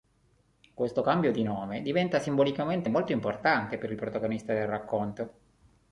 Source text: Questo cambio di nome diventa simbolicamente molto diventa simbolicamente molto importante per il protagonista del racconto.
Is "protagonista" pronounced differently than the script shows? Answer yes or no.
no